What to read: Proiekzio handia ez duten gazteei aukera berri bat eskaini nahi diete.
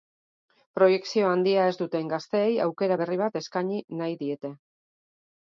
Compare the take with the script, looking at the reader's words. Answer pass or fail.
pass